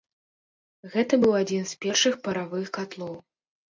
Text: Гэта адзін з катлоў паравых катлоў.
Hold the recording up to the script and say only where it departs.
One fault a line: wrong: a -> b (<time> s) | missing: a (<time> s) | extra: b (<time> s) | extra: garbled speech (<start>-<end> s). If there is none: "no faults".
extra: быў (1.2 s)
wrong: катлоў -> першых (1.9 s)